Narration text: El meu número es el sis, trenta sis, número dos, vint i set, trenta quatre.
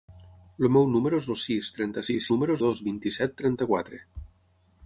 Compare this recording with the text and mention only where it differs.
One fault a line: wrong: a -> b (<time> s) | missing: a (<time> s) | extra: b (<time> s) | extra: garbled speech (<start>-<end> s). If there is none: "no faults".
no faults